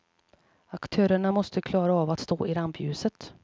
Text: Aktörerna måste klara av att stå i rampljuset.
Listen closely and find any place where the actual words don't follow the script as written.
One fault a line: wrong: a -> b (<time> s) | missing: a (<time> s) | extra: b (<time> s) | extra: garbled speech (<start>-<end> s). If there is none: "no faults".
no faults